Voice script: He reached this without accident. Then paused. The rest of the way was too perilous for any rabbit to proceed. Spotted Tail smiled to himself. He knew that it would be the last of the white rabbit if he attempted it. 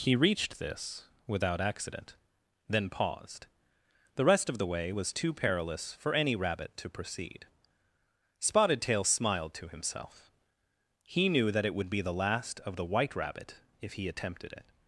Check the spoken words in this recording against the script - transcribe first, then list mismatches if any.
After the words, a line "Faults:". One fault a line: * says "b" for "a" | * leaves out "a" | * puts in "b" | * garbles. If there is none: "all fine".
He reached this without accident. Then paused. The rest of the way was too perilous for any rabbit to proceed. Spotted Tail smiled to himself. He knew that it would be the last of the white rabbit if he attempted it.
Faults:
all fine